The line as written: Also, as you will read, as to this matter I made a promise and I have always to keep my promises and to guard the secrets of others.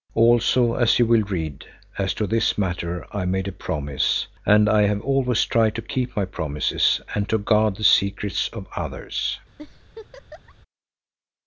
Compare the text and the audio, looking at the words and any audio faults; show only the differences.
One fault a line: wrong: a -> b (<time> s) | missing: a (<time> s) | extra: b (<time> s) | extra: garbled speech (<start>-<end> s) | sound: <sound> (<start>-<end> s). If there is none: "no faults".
extra: tried (5.4 s)
sound: laugh (9.6-10.5 s)